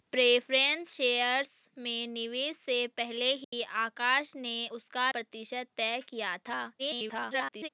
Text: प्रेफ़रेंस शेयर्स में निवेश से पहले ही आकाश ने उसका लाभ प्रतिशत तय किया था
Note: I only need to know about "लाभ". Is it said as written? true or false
false